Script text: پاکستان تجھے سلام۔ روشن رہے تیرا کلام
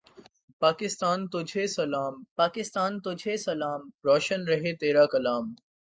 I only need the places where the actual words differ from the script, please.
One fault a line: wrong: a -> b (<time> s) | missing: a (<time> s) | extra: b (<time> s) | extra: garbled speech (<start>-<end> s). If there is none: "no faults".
extra: پاکستان تجھے سلام (2.4 s)